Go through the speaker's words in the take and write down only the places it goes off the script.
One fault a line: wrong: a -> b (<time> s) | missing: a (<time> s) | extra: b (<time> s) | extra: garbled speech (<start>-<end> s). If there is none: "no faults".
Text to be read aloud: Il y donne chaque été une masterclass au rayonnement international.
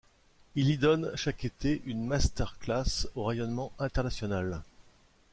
no faults